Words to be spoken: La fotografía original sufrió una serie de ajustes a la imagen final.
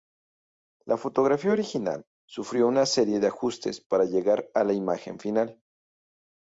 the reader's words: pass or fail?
fail